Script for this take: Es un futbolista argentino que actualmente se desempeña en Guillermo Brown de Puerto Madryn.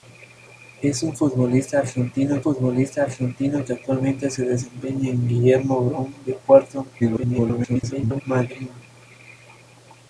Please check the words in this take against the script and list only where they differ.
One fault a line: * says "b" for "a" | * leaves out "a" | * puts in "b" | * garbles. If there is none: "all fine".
* puts in "futbolista argentino"
* garbles